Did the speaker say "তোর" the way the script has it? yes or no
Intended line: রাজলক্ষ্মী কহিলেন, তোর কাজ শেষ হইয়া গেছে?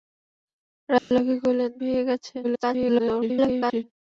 no